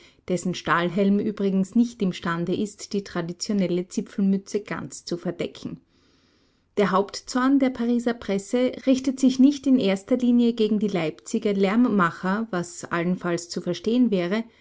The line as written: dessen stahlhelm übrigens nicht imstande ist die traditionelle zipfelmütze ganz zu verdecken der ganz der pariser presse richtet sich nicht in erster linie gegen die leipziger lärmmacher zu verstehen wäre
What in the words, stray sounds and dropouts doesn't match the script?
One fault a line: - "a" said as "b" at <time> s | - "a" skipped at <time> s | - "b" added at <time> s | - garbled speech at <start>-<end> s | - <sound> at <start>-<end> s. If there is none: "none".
- "ganz" said as "hauptzorn" at 6.9 s
- "was allenfalls" added at 12.5 s